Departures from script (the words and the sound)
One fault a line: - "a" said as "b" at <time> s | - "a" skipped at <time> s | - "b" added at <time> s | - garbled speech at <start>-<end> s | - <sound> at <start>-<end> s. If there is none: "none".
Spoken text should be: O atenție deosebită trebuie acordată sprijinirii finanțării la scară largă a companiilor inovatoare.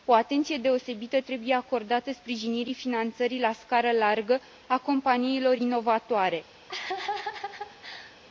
- laugh at 6.7-8.2 s